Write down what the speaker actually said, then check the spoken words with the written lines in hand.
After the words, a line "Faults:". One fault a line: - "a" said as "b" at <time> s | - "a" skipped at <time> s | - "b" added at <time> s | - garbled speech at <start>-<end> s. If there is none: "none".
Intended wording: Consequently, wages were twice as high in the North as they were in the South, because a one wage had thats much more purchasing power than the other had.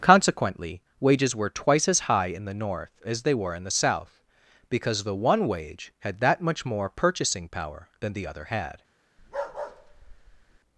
Consequently, wages were twice as high in the North as they were in the South, because the one wage had that much more purchasing power than the other had.
Faults:
- "a" said as "the" at 5.0 s
- "thats" said as "that" at 6.2 s